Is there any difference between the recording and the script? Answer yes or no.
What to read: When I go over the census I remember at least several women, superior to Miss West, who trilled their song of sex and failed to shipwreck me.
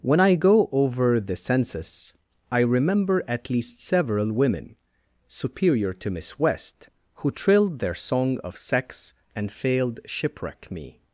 yes